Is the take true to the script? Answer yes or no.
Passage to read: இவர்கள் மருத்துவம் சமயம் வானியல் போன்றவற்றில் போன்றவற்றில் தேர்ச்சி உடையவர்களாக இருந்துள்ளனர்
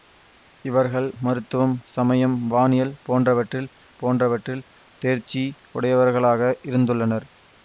yes